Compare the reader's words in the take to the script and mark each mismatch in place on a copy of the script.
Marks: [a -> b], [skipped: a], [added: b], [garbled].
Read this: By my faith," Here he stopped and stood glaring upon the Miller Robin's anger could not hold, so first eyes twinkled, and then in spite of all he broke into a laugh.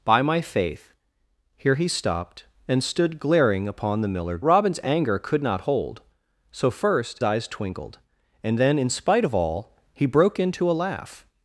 By my faith," Here he stopped and stood glaring upon the Miller Robin's anger could not hold, so first eyes twinkled, and then in spite of all he broke into a laugh.